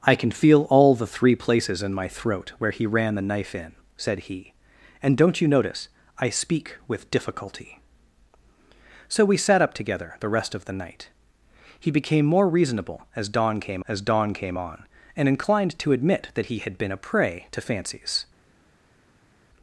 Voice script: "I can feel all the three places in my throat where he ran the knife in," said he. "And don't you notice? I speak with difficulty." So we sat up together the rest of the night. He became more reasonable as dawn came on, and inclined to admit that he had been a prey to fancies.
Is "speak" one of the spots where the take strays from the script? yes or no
no